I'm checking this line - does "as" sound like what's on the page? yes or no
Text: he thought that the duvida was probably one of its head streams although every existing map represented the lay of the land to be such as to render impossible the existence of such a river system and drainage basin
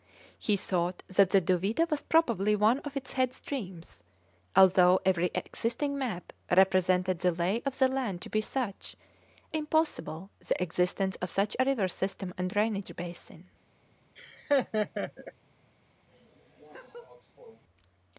no